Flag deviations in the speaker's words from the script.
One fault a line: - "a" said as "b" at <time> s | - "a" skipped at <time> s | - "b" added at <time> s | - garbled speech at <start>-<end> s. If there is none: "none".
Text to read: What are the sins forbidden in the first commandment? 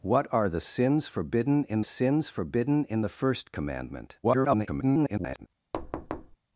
- "sins forbidden in" added at 1.8 s
- garbled speech at 4.2-5.5 s